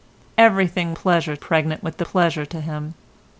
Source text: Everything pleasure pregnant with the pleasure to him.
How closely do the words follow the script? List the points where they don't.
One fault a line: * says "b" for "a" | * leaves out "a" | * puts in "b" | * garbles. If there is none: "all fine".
all fine